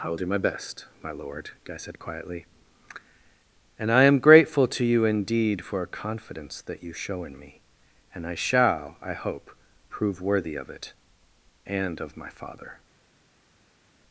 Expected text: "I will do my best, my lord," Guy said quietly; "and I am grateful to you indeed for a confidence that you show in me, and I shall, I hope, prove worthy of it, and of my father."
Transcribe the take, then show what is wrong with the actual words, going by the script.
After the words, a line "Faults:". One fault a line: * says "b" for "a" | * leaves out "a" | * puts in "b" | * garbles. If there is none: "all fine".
"I will do my best, my lord," Guy said quietly; "and I am grateful to you indeed for a confidence that you show in me, and I shall, I hope, prove worthy of it, and of my father."
Faults:
all fine